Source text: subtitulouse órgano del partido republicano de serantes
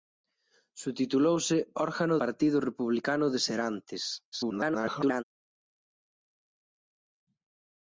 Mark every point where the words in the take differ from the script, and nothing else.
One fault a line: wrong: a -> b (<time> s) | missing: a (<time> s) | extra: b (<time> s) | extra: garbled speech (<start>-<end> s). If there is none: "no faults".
missing: del (2.2 s)
extra: garbled speech (4.3-5.2 s)